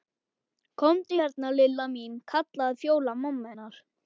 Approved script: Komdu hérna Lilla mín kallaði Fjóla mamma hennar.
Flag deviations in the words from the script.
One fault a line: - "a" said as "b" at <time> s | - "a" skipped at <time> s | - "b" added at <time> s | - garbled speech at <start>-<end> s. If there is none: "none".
none